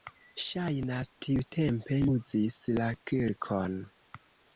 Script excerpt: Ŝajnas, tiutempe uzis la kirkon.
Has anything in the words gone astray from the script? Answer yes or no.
no